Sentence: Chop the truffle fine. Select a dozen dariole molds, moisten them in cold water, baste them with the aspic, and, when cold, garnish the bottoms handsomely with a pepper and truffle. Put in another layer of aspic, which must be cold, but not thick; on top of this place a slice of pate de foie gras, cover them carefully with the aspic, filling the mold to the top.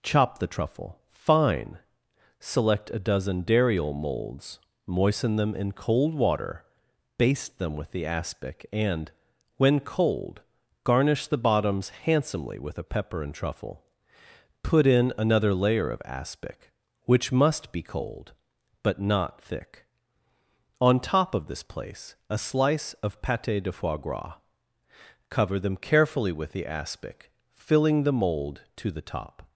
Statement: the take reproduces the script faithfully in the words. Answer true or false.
true